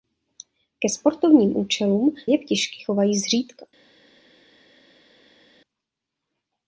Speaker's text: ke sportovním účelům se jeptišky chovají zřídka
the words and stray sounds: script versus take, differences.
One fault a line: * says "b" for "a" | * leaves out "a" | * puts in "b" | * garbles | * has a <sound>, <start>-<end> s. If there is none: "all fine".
* leaves out "se"